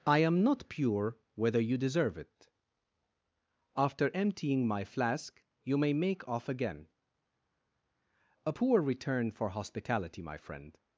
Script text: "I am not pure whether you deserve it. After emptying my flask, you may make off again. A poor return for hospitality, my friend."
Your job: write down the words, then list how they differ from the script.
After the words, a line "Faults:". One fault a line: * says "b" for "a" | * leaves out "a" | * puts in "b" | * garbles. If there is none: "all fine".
"I am not pure whether you deserve it. After emptying my flask, you may make off again. A poor return for hospitality, my friend."
Faults:
all fine